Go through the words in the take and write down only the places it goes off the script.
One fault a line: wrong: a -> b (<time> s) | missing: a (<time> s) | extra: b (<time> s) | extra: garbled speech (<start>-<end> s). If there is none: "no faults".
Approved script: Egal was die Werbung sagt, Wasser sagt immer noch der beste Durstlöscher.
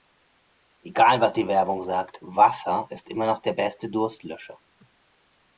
wrong: sagt -> ist (2.9 s)